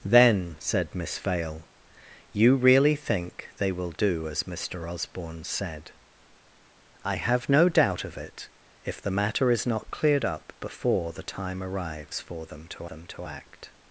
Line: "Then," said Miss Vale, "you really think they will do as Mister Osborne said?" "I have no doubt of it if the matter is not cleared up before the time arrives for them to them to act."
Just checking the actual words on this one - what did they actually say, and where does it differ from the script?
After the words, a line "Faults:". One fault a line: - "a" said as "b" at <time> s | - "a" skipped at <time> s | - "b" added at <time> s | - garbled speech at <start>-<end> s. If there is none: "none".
"Then," said Miss Vale, "you really think they will do as Mister Osborne said?" "I have no doubt of it if the matter is not cleared up before the time arrives for them to them to act."
Faults:
none